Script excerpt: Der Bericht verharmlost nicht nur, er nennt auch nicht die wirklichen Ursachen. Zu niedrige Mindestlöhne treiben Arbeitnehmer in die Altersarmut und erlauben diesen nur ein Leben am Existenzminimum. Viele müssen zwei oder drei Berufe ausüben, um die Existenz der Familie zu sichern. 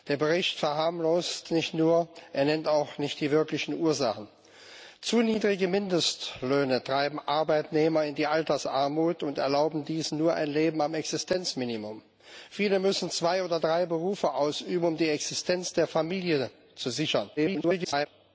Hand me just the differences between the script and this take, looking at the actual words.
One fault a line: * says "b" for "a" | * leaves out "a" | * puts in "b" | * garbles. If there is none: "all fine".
* garbles